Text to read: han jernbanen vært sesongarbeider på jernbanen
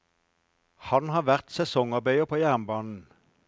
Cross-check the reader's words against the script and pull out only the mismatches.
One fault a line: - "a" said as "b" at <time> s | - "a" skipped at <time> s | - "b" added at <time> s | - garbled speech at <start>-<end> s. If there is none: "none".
- "jernbanen" said as "har" at 1.1 s